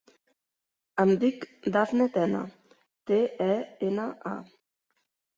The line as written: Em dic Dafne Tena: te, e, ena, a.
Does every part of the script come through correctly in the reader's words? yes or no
yes